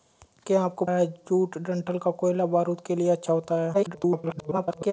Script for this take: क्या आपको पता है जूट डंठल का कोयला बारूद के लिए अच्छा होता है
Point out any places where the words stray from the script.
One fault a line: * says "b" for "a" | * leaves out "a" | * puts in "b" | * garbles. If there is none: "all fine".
* leaves out "पता"
* garbles